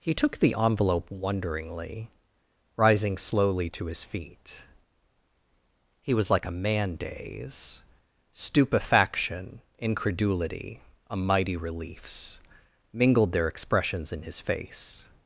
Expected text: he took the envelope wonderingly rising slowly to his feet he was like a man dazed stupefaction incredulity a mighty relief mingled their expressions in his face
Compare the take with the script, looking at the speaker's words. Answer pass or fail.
fail